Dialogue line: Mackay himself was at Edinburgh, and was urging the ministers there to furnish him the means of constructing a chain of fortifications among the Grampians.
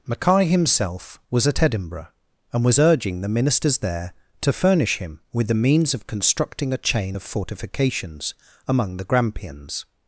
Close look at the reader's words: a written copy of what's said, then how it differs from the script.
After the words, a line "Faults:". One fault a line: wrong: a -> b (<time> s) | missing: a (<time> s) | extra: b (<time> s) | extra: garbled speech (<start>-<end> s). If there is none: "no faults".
Mackay himself was at Edinburgh, and was urging the ministers there to furnish him with the means of constructing a chain of fortifications among the Grampians.
Faults:
extra: with (5.3 s)